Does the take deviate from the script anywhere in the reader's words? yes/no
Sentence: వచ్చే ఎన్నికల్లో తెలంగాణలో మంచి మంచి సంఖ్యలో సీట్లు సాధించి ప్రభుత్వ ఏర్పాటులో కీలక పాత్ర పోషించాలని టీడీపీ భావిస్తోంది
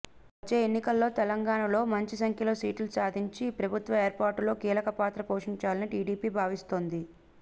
yes